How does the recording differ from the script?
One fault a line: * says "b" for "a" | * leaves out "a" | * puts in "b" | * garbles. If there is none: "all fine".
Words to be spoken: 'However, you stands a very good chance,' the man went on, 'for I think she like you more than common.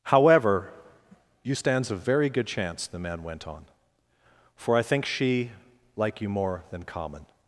all fine